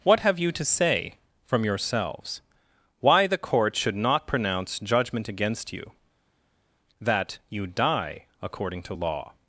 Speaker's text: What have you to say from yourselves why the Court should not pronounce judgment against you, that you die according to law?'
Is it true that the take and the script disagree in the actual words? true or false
false